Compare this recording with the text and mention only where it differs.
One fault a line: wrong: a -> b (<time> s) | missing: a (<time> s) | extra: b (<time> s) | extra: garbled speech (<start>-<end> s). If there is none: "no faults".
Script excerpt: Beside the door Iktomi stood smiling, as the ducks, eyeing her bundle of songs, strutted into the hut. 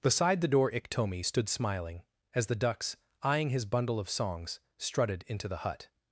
wrong: her -> his (3.5 s)